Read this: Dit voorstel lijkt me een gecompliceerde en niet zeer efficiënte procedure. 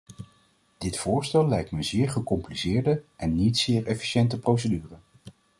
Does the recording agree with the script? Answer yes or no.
no